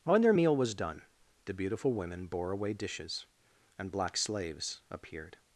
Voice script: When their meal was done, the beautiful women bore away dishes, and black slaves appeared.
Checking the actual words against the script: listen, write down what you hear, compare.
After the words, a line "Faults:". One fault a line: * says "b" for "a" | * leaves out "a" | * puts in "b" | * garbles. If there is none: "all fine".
When their meal was done, the beautiful women bore away dishes, and black slaves appeared.
Faults:
all fine